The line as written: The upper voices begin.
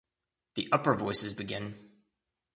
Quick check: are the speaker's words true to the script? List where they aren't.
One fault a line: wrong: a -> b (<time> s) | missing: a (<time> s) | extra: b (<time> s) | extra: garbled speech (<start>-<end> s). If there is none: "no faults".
no faults